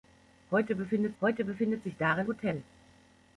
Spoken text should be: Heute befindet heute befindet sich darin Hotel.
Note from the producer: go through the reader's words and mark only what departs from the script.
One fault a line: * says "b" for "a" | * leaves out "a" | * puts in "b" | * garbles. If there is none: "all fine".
all fine